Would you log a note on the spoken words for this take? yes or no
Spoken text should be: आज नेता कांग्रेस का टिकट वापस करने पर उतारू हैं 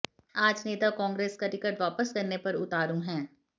no